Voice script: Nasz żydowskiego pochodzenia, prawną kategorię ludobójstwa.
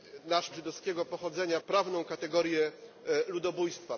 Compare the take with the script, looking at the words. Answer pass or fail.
pass